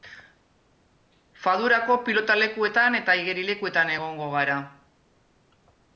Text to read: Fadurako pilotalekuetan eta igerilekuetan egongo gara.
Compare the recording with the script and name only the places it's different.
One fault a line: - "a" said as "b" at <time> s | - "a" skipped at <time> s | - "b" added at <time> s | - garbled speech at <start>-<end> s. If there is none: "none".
none